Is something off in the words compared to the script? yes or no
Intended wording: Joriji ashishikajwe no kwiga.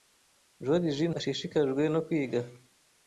no